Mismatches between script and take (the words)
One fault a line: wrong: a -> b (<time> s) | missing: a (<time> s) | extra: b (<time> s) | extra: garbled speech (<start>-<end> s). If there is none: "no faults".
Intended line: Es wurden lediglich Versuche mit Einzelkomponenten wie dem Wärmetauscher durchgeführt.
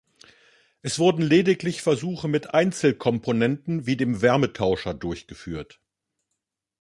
no faults